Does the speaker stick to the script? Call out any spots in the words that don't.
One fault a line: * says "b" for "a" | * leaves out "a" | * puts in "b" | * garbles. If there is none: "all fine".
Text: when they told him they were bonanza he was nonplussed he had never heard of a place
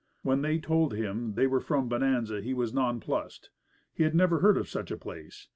* puts in "from"
* puts in "such"